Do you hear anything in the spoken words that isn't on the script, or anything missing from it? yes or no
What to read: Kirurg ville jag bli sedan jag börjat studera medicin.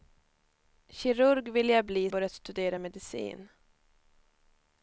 yes